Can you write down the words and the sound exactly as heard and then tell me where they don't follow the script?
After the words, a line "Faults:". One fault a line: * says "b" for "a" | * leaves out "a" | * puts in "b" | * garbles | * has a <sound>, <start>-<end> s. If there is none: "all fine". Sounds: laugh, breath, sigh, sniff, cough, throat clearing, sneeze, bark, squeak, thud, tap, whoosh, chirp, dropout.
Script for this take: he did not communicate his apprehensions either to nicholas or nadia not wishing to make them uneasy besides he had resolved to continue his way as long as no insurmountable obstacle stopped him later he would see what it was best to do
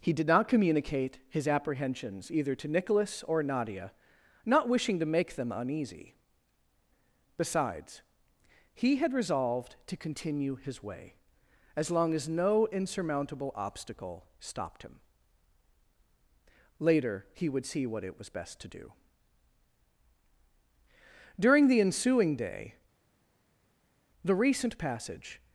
he did not communicate his apprehensions either to nicholas or nadia not wishing to make them uneasy besides he had resolved to continue his way as long as no insurmountable obstacle stopped him later he would see what it was best to do during the ensuing day the recent passage
Faults:
* puts in "during the ensuing day the recent passage"